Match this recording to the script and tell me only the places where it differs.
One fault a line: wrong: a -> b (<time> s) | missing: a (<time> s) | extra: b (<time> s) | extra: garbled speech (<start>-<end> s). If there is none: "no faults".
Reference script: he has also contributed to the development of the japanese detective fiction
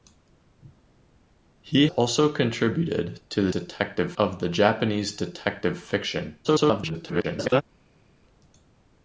missing: has (1.9 s)
wrong: development -> detective (3.5 s)
extra: garbled speech (6.4-7.6 s)